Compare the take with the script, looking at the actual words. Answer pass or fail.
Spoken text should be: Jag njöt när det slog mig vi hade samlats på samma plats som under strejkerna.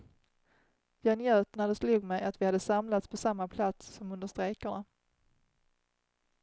fail